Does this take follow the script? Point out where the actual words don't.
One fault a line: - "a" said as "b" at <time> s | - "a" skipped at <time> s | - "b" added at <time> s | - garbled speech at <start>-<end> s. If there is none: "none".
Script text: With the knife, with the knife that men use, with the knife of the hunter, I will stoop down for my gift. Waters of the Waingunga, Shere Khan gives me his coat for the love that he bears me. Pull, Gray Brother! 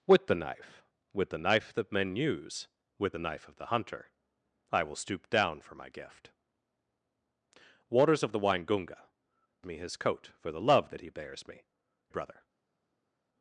- "Shere Khan gives" skipped at 9.0 s
- "Pull Gray" skipped at 11.6 s